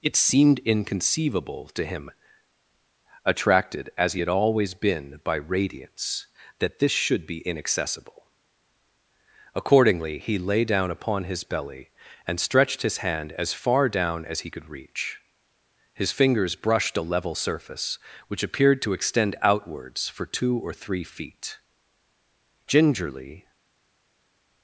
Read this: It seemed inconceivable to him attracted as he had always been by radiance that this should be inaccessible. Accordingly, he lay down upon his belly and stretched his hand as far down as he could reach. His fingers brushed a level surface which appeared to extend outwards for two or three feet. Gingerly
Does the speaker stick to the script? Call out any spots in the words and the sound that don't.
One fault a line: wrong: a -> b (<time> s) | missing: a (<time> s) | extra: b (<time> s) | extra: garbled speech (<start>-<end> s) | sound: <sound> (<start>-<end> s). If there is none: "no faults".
no faults